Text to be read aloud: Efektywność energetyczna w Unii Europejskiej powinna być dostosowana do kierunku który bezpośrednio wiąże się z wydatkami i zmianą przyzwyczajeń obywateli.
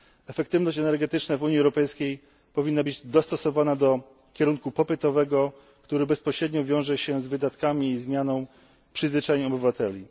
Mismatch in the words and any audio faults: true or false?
true